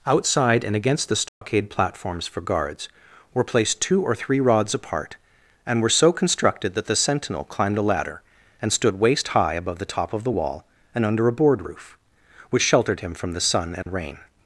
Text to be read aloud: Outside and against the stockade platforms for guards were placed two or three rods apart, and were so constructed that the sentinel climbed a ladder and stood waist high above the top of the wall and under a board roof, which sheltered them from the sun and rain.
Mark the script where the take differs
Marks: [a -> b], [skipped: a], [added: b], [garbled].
Outside and against the stockade platforms for guards were placed two or three rods apart, and were so constructed that the sentinel climbed a ladder and stood waist high above the top of the wall and under a board roof, which sheltered [them -> him] from the sun and rain.